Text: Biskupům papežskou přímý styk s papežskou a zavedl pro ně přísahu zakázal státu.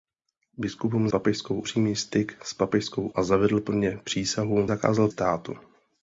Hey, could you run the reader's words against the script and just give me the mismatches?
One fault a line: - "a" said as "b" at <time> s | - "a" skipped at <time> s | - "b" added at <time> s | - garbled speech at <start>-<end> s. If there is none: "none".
none